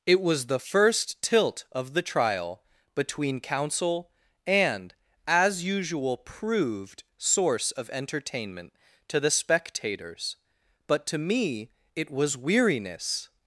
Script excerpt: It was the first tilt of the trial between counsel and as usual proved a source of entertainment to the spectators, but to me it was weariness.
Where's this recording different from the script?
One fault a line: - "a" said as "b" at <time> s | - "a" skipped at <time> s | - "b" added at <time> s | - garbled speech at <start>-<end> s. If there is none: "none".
- "a" skipped at 7.0 s